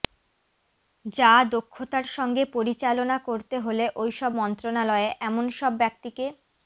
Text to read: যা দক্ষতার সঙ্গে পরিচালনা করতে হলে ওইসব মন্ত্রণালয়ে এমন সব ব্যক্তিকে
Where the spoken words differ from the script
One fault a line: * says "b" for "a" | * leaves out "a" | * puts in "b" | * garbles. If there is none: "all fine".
all fine